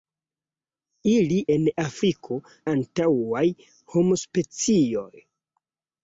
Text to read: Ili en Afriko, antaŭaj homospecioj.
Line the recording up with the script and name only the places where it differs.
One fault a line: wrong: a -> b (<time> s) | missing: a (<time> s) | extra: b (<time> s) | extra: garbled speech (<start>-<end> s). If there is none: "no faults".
no faults